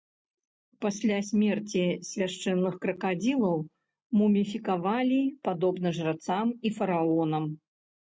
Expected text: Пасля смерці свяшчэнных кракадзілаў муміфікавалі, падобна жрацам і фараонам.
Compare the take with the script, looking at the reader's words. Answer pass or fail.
pass